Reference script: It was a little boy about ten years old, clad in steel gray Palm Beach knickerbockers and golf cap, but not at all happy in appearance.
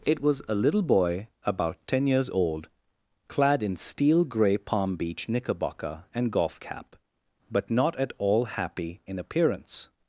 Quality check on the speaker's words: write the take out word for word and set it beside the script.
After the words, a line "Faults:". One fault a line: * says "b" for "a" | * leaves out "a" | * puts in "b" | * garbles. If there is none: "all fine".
It was a little boy about ten years old, clad in steel gray Palm Beach knickerbocker and golf cap, but not at all happy in appearance.
Faults:
* says "knickerbocker" for "knickerbockers"